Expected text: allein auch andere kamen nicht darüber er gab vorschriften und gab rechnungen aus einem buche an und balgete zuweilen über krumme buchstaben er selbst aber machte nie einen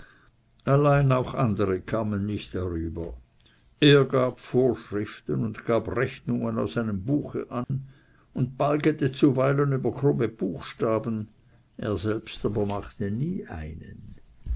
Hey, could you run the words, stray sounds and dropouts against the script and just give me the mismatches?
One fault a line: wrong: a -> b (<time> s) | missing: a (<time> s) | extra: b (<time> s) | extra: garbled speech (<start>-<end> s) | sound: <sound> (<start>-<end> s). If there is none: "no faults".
sound: dropout (7.6-7.7 s)